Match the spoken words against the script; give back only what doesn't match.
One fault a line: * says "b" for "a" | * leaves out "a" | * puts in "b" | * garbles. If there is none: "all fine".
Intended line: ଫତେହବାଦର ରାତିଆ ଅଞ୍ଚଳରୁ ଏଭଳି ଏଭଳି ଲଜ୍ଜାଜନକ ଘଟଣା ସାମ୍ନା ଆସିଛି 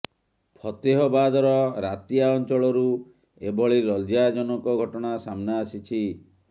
* leaves out "ଏଭଳି"